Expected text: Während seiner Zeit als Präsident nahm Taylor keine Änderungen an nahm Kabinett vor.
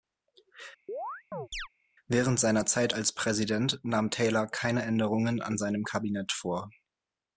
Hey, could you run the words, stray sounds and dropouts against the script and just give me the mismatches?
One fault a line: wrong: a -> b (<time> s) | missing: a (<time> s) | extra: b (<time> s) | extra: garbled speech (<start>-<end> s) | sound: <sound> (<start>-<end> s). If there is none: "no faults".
sound: chirp (0.9-1.7 s)
wrong: nahm -> seinem (5.6 s)